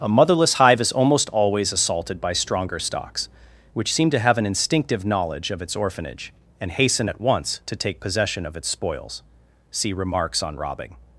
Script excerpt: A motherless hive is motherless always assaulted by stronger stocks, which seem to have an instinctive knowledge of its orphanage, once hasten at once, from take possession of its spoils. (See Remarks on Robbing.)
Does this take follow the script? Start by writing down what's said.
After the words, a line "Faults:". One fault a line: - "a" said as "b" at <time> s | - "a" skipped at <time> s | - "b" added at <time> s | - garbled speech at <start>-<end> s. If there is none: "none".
A motherless hive is almost always assaulted by stronger stocks, which seem to have an instinctive knowledge of its orphanage, and hasten at once, to take possession of its spoils. (See Remarks on Robbing.)
Faults:
- "motherless" said as "almost" at 0.9 s
- "once" said as "and" at 6.6 s
- "from" said as "to" at 7.6 s